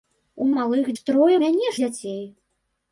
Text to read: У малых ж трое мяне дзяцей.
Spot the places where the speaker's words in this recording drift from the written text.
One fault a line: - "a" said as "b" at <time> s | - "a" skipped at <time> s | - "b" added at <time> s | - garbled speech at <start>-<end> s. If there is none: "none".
none